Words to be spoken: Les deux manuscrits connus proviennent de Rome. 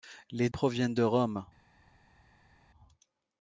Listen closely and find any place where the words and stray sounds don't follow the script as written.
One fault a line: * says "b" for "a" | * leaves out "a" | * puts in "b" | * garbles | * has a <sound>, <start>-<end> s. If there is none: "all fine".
* leaves out "deux manuscrits connus"